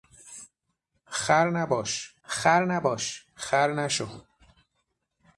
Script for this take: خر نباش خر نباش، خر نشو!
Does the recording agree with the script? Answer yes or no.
yes